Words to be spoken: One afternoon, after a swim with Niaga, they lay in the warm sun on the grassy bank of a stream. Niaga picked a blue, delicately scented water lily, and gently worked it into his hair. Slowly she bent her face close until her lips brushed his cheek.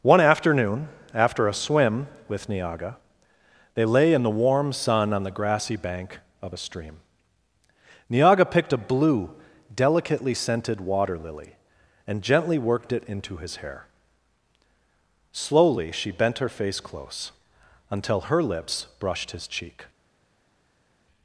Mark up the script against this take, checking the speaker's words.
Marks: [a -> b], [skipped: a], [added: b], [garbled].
One afternoon, after a swim with Niaga, they lay in the warm sun on the grassy bank of a stream. Niaga picked a blue, delicately scented water lily, and gently worked it into his hair. Slowly she bent her face close until her lips brushed his cheek.